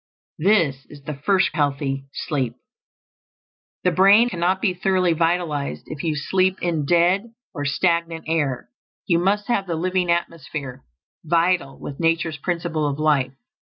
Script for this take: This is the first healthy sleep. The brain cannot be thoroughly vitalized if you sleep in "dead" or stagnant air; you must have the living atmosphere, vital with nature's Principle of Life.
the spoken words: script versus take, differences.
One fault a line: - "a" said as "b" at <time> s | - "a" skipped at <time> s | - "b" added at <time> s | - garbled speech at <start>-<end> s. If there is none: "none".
none